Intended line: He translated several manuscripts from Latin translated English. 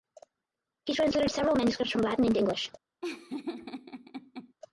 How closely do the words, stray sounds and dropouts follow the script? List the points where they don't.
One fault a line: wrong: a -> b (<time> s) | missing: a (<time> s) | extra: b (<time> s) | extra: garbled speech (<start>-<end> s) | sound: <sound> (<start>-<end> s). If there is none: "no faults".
wrong: translated -> into (2.2 s)
sound: laugh (3.0-4.5 s)